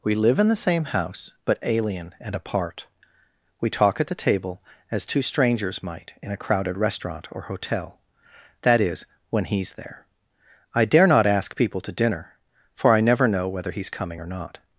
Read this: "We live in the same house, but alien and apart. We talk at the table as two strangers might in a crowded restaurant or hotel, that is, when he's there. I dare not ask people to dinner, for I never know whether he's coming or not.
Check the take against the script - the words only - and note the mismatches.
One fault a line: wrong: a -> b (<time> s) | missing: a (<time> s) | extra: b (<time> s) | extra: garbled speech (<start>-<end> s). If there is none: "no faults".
no faults